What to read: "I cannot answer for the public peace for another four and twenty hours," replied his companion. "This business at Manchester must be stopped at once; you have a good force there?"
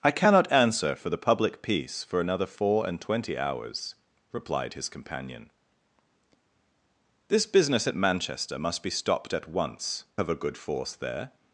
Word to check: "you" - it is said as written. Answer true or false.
false